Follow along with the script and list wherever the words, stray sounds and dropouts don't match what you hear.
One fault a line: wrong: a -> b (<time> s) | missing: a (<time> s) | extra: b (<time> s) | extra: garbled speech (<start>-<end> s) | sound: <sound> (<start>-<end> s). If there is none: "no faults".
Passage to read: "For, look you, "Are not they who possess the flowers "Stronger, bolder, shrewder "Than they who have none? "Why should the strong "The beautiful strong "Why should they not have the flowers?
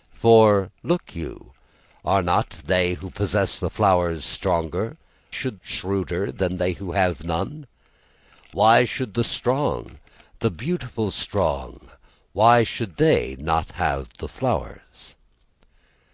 wrong: bolder -> should (5.3 s)